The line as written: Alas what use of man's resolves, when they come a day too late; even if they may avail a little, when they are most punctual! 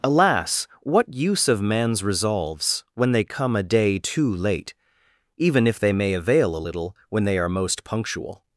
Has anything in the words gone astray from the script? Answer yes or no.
no